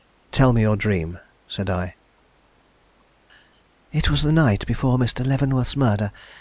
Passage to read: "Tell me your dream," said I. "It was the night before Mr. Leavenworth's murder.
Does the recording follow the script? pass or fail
pass